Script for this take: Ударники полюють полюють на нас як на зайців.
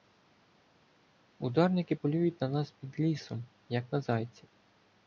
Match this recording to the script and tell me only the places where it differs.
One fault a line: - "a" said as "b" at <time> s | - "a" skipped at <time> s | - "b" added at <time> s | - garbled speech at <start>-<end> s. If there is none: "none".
- "полюють" skipped at 2.4 s
- "під лісом" added at 2.7 s